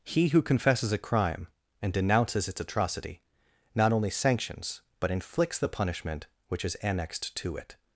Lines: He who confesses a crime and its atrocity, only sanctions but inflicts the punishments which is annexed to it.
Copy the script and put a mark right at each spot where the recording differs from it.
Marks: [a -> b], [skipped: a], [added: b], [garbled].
He who confesses a crime and [added: denounces] its atrocity, [added: not] only sanctions but inflicts the [punishments -> punishment] which is annexed to it.